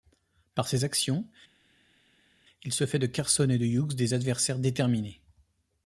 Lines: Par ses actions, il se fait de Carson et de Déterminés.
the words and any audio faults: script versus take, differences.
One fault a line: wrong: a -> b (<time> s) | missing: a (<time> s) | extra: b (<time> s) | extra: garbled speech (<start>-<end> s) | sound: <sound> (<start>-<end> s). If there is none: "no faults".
extra: Hughes des adversaires (3.7 s)